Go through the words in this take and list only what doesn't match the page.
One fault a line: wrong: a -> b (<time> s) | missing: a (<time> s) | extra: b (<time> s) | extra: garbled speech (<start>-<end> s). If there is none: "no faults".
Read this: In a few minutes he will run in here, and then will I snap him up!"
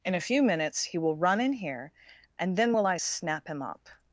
no faults